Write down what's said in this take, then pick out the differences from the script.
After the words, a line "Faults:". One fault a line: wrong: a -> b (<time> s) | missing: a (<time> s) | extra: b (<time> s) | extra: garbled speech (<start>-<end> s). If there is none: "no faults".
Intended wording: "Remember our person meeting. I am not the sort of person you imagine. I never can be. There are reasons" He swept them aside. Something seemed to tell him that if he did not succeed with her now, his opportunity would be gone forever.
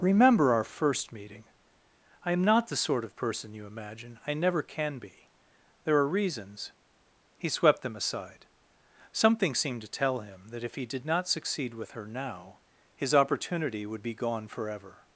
"Remember our first meeting. I am not the sort of person you imagine. I never can be. There are reasons" He swept them aside. Something seemed to tell him that if he did not succeed with her now, his opportunity would be gone forever.
Faults:
wrong: person -> first (0.6 s)